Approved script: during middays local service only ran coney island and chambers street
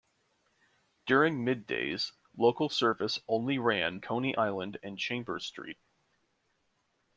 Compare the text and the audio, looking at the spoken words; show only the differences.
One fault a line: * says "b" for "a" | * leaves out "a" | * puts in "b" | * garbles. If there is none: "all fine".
all fine